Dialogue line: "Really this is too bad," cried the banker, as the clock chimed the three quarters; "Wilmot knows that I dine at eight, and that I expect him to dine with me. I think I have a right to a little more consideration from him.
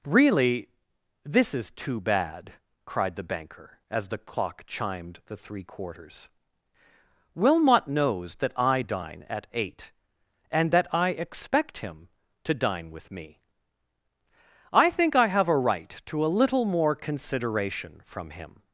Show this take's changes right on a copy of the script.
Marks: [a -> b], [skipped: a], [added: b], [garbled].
"Really this is too bad," cried the banker, as the clock chimed the three quarters; "Wilmot knows that I dine at eight, and that I expect him to dine with me. I think I have a right to a little more consideration from him.